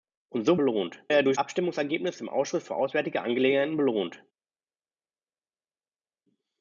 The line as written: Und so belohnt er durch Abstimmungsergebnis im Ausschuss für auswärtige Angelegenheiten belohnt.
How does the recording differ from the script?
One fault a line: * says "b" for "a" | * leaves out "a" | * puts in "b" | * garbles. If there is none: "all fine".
all fine